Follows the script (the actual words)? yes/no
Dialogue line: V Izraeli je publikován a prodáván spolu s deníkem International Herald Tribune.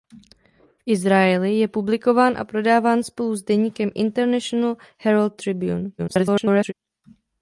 no